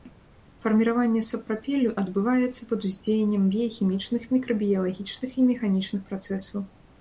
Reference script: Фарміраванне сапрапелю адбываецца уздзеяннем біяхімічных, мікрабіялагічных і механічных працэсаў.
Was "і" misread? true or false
false